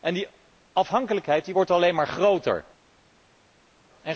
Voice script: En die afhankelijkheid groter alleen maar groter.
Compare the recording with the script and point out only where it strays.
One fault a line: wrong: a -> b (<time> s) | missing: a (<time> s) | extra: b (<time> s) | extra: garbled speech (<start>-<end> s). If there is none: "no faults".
wrong: groter -> wordt (1.5 s)